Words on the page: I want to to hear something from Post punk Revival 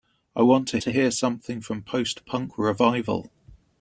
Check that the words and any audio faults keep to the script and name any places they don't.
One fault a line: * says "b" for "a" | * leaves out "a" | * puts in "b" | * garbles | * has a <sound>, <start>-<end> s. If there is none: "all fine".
all fine